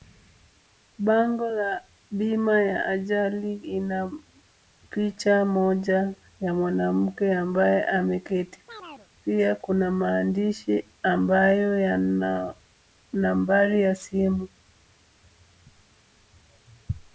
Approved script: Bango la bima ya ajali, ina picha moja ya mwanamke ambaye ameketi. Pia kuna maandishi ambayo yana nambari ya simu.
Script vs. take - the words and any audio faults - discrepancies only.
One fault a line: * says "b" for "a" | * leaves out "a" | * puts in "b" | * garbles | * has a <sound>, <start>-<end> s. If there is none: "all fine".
* has a chirp, 8.7-9.1 s